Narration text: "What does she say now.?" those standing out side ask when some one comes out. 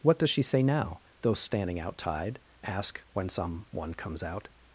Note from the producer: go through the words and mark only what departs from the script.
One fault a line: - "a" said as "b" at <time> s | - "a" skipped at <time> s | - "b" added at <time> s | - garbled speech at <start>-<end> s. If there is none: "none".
- "side" said as "tide" at 2.0 s